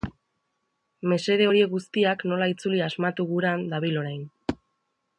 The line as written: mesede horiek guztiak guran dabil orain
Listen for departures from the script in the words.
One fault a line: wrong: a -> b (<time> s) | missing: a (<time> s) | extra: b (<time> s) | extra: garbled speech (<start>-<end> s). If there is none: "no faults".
extra: nola itzuli asmatu (2.3 s)